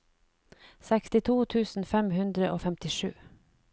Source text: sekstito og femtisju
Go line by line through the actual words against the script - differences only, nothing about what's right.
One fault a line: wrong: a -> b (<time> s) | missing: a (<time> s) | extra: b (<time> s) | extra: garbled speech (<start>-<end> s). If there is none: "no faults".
extra: tusen fem hundre (1.6 s)